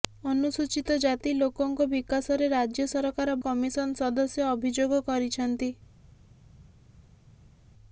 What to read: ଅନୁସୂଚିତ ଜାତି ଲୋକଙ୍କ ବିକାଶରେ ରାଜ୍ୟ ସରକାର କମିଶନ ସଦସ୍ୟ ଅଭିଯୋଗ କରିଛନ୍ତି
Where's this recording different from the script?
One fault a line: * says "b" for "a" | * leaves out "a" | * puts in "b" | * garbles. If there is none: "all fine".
all fine